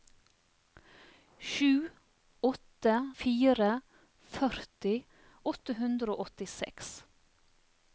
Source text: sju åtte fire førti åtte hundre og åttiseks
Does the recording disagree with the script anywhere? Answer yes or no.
no